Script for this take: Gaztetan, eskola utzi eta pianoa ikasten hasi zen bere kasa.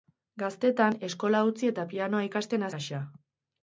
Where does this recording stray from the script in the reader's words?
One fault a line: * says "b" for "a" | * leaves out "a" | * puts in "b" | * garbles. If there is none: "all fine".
* leaves out "hasi zen bere"